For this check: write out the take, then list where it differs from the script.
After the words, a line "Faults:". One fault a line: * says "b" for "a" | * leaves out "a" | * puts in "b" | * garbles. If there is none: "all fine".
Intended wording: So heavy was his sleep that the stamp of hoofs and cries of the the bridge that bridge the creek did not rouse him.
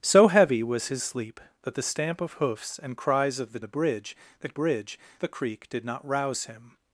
So heavy was his sleep that the stamp of hoofs and cries of the the bridge that bridge the creek did not rouse him.
Faults:
all fine